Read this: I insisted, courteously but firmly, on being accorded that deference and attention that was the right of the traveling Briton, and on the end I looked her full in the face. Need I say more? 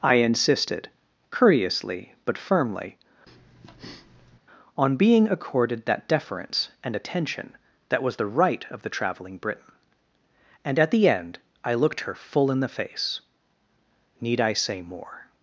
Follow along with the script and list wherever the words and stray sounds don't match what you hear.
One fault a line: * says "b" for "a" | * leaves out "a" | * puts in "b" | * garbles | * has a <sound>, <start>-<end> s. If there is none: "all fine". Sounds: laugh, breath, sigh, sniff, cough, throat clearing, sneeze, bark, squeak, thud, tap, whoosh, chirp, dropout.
* has a breath, 3.3-4.4 s
* says "at" for "on"